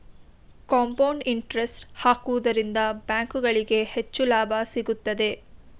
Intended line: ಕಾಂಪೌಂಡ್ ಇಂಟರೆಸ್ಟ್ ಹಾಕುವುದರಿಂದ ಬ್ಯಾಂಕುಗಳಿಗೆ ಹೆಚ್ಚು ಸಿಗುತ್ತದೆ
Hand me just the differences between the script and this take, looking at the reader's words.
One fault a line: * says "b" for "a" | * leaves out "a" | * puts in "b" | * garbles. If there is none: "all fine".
* puts in "ಲಾಭ"